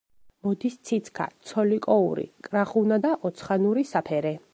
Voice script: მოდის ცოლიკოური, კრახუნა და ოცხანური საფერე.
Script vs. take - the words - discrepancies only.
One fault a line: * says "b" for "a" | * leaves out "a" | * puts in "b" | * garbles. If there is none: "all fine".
* puts in "ციცქა"